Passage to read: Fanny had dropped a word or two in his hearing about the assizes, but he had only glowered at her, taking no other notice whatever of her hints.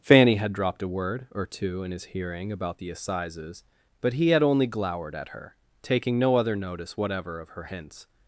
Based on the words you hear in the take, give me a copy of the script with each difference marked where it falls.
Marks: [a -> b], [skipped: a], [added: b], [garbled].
Fanny had dropped a word or two in his hearing about the assizes, but he had only glowered at her, taking no other notice whatever of her hints.